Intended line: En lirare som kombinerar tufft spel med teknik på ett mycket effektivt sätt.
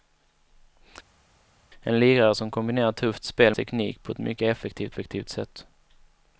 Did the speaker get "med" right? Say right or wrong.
wrong